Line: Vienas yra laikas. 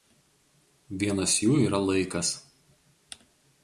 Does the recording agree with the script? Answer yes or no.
no